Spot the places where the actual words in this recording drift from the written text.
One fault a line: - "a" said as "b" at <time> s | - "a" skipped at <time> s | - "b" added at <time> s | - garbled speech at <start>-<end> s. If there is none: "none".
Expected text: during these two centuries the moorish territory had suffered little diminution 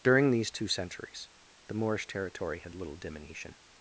- "suffered" skipped at 2.8 s